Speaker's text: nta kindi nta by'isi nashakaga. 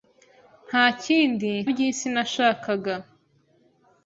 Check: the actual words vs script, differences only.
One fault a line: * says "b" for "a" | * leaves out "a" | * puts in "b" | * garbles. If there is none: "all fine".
* leaves out "nta"